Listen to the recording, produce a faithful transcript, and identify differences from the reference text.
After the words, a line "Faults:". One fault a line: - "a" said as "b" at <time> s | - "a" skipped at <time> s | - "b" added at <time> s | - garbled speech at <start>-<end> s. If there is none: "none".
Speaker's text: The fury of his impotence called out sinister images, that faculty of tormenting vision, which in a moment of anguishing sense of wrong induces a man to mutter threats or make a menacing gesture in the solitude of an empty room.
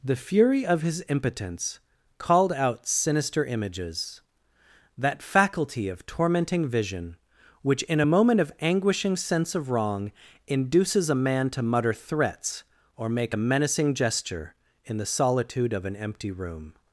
The fury of his impotence called out sinister images, that faculty of tormenting vision, which in a moment of anguishing sense of wrong induces a man to mutter threats or make a menacing gesture in the solitude of an empty room.
Faults:
none